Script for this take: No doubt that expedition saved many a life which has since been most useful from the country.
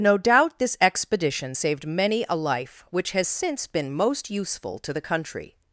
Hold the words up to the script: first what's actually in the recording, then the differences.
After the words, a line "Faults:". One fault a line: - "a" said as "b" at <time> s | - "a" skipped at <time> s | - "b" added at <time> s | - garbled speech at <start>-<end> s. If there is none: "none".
No doubt this expedition saved many a life which has since been most useful to the country.
Faults:
- "that" said as "this" at 0.6 s
- "from" said as "to" at 4.8 s